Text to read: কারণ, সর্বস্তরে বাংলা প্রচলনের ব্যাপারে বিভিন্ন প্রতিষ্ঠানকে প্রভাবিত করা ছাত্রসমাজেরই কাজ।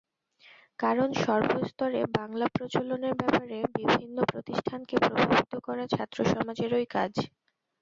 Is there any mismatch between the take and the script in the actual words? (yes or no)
no